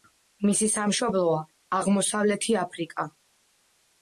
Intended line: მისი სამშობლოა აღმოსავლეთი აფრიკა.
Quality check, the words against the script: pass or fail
pass